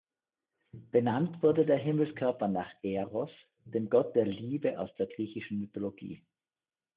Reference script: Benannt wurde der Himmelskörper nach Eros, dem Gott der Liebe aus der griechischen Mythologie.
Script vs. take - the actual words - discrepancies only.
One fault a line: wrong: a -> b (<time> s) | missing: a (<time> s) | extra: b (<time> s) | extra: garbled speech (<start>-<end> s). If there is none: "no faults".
no faults